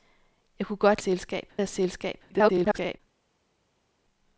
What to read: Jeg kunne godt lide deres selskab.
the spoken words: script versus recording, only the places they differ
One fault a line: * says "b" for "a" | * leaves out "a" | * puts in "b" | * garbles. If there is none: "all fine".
* says "selskab" for "lide"
* garbles